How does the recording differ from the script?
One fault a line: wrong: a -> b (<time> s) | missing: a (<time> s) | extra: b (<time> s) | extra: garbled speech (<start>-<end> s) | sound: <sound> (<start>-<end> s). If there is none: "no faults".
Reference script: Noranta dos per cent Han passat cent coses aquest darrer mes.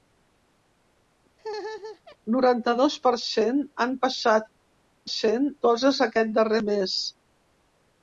sound: laugh (1.4-2.2 s)